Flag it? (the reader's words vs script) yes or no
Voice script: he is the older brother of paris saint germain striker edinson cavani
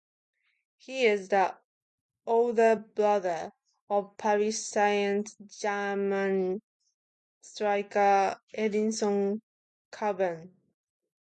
no